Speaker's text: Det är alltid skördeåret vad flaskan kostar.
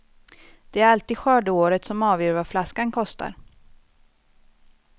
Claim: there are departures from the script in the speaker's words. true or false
true